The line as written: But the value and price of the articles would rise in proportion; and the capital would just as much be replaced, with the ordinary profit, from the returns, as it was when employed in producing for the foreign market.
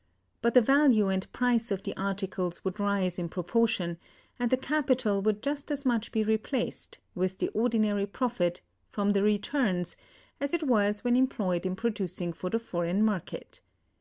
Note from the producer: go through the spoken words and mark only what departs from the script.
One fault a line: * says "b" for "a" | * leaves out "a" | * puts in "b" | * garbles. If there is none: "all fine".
all fine